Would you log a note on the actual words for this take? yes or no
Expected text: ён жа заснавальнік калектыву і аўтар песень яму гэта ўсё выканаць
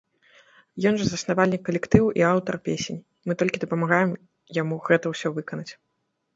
yes